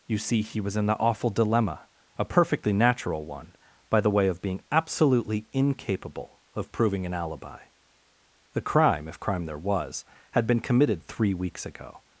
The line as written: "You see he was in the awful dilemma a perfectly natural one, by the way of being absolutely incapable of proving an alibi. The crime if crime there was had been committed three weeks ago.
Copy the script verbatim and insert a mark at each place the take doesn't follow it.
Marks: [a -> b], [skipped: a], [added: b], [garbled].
"You see he was in the awful dilemma a perfectly natural one, by the way of being absolutely incapable of proving an alibi. The crime if crime there was had been committed three weeks ago.